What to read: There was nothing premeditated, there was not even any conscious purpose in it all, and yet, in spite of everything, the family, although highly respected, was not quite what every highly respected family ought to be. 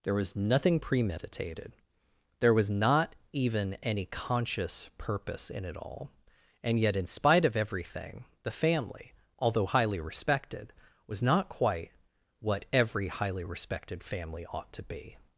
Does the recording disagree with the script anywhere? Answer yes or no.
no